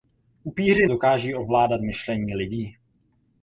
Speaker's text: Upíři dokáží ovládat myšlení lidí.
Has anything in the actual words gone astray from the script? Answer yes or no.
no